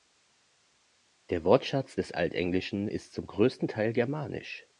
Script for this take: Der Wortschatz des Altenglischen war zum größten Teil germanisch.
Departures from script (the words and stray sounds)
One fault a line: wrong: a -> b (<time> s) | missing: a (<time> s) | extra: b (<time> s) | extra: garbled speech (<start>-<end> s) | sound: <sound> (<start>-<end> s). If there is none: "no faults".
wrong: war -> ist (2.9 s)